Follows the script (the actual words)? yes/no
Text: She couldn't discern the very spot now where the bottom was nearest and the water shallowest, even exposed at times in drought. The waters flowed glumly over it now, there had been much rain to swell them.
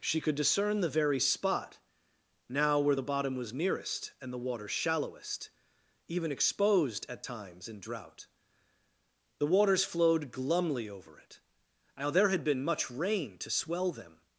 no